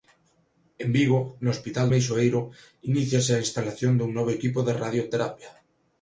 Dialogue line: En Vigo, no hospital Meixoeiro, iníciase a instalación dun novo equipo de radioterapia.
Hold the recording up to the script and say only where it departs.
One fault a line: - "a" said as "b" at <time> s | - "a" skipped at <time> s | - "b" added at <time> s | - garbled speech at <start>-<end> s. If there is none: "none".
none